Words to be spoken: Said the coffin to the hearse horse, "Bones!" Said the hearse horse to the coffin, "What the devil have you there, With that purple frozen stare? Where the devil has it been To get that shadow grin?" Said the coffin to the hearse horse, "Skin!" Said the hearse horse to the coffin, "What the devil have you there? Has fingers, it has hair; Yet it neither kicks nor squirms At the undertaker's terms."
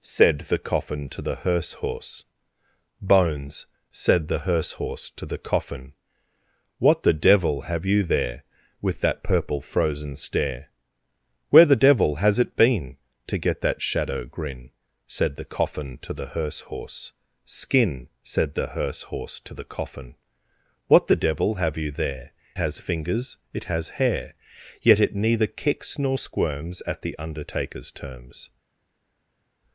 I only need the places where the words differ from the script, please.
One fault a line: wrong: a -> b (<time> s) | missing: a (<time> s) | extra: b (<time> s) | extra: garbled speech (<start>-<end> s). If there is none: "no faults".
no faults